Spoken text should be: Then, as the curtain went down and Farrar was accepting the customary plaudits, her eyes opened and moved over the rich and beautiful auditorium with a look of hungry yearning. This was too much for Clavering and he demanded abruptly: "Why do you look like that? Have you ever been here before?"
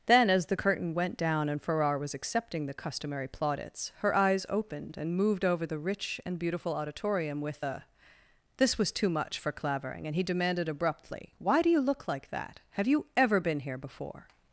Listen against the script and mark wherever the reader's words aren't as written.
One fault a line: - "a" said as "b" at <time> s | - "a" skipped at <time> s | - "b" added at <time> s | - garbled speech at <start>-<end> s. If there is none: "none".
- "look of hungry yearning" skipped at 7.8 s